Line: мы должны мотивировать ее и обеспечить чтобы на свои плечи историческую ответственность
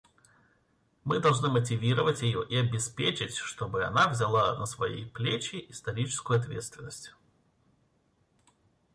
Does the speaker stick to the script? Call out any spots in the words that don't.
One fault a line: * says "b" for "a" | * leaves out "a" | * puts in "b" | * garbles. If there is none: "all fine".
* puts in "она взяла"